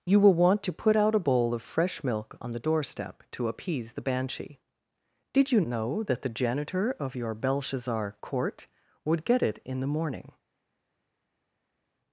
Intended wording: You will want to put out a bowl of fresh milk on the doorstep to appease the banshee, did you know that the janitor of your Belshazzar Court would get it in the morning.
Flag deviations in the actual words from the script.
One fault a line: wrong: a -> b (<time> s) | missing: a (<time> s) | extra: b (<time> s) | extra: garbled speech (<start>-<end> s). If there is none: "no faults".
no faults